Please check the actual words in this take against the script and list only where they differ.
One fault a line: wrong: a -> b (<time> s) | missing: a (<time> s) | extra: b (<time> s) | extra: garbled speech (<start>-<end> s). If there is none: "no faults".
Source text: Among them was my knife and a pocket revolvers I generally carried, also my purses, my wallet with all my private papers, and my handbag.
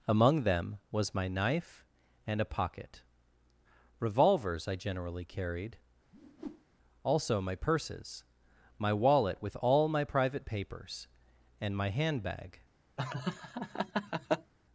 no faults